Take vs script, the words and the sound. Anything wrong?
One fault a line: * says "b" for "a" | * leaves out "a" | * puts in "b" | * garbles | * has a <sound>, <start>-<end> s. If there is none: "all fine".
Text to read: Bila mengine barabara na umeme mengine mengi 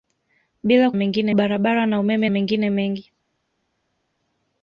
all fine